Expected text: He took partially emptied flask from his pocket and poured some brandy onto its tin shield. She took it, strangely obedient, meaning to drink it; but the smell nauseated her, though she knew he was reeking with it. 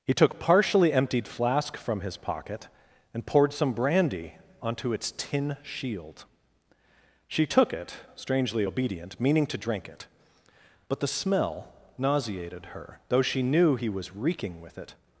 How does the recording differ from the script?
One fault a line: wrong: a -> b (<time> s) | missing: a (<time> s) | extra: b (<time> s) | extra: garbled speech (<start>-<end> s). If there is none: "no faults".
no faults